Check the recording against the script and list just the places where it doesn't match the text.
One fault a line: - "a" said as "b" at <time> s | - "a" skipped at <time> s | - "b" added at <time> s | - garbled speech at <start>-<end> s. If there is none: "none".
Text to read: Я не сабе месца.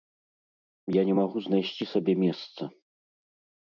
- "магу знайсці" added at 1.2 s